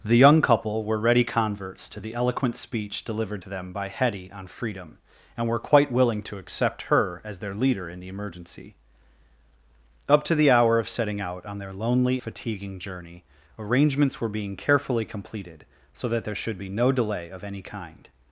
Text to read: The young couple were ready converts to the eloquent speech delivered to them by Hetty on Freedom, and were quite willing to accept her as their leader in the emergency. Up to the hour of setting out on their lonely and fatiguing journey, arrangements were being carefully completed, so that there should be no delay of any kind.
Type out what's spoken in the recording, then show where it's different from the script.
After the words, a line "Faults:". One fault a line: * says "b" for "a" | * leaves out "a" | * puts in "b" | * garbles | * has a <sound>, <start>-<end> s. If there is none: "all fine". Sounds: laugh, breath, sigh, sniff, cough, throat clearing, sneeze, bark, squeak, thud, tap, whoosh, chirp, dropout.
The young couple were ready converts to the eloquent speech delivered to them by Hetty on Freedom, and were quite willing to accept her as their leader in the emergency. Up to the hour of setting out on their lonely fatiguing journey, arrangements were being carefully completed, so that there should be no delay of any kind.
Faults:
* leaves out "and"